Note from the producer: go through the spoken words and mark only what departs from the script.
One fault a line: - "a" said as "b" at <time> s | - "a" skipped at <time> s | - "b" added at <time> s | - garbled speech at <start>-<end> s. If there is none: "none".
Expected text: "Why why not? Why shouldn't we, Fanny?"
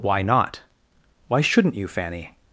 - "why" skipped at 0.2 s
- "we" said as "you" at 1.7 s